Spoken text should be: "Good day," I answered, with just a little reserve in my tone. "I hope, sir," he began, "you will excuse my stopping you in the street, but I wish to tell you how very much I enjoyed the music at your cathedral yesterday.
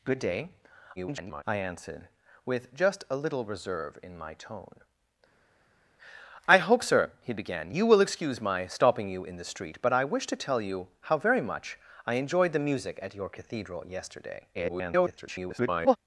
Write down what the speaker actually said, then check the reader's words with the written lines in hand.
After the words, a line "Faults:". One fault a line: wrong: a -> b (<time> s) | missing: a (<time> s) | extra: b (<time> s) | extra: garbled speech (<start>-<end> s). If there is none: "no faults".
"Good day," [garbled] I answered, with just a little reserve in my tone. "I hope, sir," he began, "you will excuse my stopping you in the street, but I wish to tell you how very much I enjoyed the music at your cathedral yesterday. [garbled]
Faults:
extra: garbled speech (1.0-1.4 s)
extra: garbled speech (14.5-16.0 s)